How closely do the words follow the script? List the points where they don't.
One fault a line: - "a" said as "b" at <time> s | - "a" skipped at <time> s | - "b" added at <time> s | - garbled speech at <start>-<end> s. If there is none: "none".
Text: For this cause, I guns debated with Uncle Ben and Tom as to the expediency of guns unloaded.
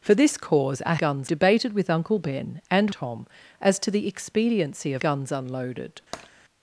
none